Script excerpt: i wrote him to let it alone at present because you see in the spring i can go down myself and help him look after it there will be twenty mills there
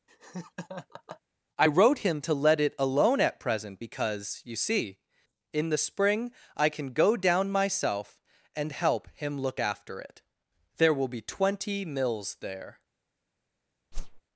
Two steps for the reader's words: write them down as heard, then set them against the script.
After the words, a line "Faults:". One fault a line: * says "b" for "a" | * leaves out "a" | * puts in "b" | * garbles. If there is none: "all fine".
i wrote him to let it alone at present because you see in the spring i can go down myself and help him look after it there will be twenty mills there
Faults:
all fine